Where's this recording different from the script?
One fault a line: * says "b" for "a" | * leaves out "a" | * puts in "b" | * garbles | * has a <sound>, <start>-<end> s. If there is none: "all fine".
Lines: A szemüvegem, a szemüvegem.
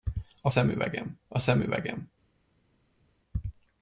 all fine